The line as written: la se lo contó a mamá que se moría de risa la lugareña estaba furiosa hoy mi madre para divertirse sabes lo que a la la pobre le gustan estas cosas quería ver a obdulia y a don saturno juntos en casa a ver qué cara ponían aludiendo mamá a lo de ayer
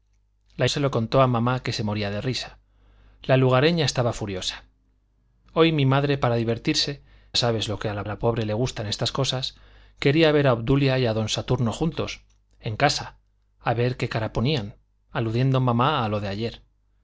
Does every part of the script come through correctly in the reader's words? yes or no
yes